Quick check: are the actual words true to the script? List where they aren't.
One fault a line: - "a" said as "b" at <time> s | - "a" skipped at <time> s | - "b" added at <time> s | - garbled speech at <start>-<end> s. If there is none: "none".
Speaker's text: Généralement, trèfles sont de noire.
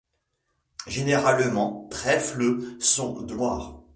none